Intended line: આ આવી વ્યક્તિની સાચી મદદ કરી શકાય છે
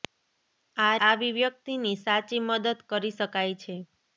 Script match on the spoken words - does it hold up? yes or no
yes